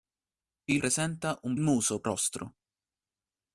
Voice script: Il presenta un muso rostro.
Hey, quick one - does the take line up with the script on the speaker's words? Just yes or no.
yes